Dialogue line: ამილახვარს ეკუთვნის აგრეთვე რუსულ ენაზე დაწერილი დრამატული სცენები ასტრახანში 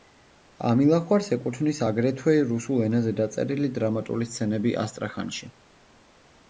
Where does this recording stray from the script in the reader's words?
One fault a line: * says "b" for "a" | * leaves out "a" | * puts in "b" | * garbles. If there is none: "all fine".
all fine